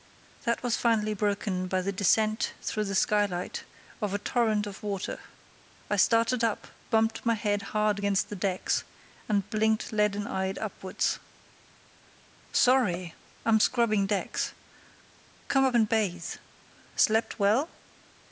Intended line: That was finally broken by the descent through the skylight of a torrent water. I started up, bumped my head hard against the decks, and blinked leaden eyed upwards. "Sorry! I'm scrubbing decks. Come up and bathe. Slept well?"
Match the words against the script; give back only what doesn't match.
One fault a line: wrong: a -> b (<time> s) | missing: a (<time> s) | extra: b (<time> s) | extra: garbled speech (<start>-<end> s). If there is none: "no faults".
extra: of (4.6 s)